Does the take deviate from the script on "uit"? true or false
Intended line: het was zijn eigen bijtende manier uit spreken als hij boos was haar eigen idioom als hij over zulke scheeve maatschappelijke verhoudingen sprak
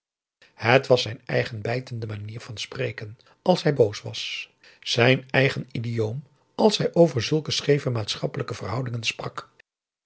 true